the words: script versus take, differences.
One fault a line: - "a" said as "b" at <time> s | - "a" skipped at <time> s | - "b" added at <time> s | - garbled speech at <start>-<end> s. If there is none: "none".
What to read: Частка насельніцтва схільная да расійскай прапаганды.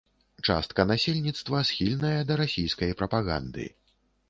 none